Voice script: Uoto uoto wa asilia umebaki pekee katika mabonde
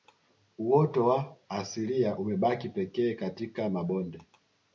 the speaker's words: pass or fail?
fail